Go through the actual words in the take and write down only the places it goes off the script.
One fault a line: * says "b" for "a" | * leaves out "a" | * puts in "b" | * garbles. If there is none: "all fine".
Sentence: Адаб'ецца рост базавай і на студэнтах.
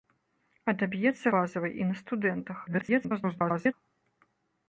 * leaves out "рост"
* garbles